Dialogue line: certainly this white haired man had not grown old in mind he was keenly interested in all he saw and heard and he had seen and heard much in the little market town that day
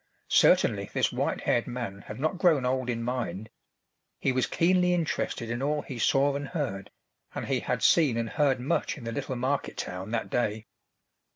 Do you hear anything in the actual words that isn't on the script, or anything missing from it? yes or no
no